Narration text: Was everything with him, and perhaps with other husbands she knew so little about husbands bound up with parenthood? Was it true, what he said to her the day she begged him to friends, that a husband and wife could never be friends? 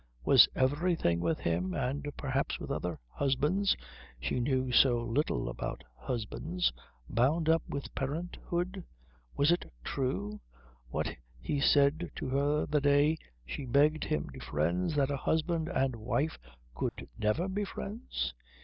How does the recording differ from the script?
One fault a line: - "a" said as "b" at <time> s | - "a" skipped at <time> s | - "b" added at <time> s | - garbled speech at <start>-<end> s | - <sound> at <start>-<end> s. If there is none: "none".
- dropout at 16.9-17.0 s